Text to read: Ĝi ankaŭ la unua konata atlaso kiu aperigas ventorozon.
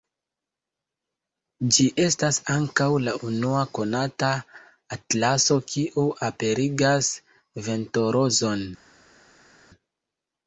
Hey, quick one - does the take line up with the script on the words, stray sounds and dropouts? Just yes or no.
no